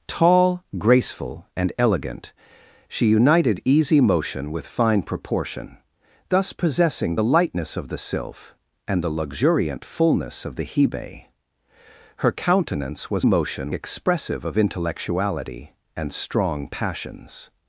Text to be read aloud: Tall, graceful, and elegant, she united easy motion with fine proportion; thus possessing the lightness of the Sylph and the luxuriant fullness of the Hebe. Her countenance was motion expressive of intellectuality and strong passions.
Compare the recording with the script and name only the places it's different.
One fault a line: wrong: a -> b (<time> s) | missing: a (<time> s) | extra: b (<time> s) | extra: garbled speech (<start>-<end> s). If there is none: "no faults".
no faults